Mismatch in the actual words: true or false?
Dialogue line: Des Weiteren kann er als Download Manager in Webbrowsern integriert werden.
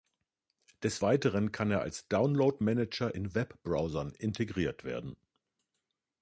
false